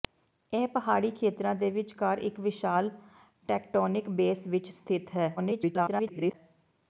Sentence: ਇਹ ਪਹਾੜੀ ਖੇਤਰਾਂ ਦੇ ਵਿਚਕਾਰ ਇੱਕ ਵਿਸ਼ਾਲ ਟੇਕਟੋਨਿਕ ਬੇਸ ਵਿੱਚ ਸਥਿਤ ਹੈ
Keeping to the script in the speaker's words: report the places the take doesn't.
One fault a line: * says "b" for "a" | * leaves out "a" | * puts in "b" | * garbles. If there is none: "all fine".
* garbles